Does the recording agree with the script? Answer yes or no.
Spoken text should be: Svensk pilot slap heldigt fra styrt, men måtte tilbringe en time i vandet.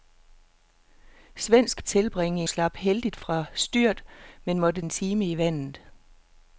no